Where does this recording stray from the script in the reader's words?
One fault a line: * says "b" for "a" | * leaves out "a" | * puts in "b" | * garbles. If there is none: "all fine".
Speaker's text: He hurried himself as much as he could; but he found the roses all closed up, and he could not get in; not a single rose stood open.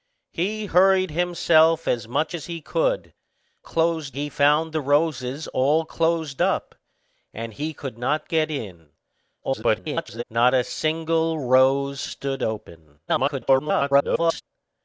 * says "closed" for "but"
* garbles
* garbles